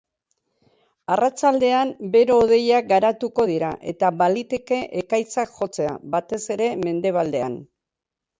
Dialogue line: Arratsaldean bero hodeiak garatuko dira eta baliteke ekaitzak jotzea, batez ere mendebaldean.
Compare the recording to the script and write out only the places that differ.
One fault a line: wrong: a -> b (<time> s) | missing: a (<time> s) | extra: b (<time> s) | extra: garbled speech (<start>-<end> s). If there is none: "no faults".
no faults